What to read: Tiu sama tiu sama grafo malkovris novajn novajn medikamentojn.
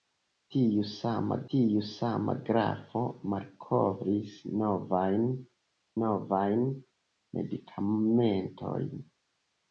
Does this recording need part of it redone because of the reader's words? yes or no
no